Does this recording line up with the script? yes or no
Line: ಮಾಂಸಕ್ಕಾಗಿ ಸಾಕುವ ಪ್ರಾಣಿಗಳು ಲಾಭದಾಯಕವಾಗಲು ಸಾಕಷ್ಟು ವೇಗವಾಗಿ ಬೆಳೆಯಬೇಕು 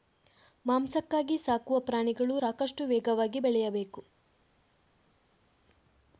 no